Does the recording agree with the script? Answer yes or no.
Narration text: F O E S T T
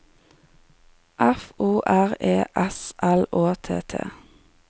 no